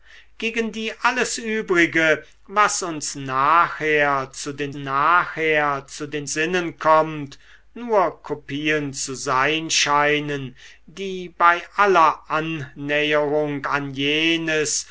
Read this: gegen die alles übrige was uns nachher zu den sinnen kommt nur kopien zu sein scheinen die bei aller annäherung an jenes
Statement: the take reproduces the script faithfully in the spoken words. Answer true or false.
false